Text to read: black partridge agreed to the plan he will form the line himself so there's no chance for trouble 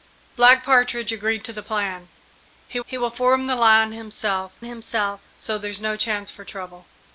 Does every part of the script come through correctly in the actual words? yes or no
no